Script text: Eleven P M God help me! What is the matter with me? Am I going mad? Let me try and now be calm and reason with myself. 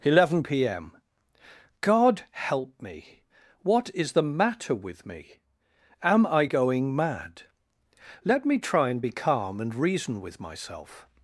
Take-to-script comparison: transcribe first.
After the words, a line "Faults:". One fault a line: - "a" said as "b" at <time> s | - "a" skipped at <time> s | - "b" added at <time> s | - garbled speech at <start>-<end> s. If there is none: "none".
Eleven P M God help me! What is the matter with me? Am I going mad? Let me try and be calm and reason with myself.
Faults:
- "now" skipped at 9.0 s